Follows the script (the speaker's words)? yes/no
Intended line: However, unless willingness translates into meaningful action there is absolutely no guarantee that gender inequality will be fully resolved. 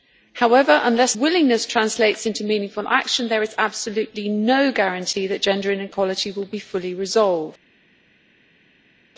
yes